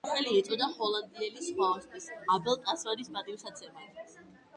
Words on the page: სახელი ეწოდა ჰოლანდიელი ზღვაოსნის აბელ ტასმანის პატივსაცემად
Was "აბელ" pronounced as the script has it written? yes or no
yes